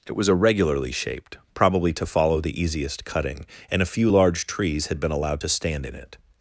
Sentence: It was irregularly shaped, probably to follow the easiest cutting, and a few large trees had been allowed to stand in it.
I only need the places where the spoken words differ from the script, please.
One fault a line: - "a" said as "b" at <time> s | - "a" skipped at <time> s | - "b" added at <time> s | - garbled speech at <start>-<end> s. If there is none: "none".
none